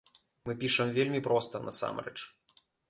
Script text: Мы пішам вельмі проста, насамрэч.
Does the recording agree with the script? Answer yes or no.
yes